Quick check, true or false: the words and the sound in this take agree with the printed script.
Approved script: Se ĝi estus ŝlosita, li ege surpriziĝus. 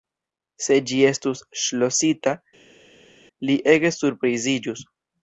true